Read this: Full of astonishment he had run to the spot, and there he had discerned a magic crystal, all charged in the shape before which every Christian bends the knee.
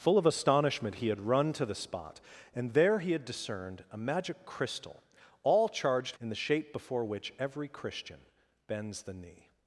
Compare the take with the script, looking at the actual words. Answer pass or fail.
pass